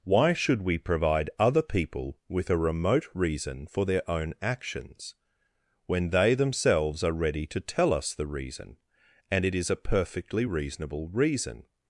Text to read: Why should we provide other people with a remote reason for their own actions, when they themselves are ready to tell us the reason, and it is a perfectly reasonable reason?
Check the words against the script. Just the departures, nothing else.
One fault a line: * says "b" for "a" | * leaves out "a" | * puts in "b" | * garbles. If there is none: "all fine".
all fine